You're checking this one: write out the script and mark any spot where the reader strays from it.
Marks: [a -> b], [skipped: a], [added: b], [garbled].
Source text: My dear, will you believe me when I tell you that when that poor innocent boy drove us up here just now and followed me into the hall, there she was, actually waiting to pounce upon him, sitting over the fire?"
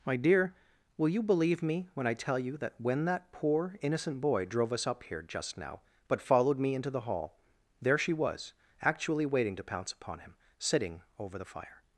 My dear, will you believe me when I tell you that when that poor innocent boy drove us up here just now [and -> but] followed me into the hall, there she was, actually waiting to pounce upon him, sitting over the fire?"